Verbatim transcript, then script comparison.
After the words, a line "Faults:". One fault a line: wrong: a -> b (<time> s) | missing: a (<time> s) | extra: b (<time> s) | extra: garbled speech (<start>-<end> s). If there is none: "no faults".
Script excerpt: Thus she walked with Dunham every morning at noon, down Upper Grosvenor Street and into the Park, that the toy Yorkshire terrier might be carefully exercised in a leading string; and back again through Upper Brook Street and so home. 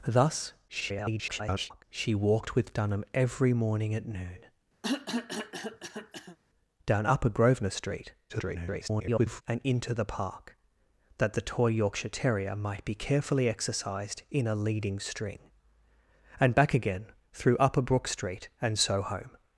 Thus [garbled] she walked with Dunham every morning at noon, down Upper Grosvenor Street [garbled] and into the Park, that the toy Yorkshire terrier might be carefully exercised in a leading string; and back again through Upper Brook Street and so home.
Faults:
extra: garbled speech (0.7-1.8 s)
extra: garbled speech (8.3-9.4 s)